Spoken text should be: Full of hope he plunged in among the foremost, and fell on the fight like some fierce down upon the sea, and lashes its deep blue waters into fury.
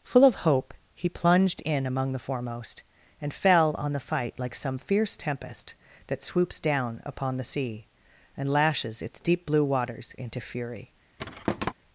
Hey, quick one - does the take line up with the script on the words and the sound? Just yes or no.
no